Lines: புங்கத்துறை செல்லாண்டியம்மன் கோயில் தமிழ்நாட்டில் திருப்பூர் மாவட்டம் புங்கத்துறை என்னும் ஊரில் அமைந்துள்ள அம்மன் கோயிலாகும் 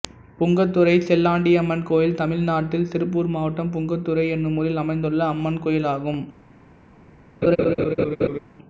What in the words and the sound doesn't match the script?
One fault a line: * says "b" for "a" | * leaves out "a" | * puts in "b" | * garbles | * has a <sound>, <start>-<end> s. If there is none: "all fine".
* has a laugh, 7.4-8.4 s